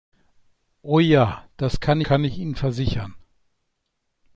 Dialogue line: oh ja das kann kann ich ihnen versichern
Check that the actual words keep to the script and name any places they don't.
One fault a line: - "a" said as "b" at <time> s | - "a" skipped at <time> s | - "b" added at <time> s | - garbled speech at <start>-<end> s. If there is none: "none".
none